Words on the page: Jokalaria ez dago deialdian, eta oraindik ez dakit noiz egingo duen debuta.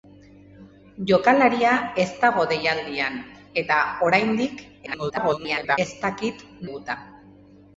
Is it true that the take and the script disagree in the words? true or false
true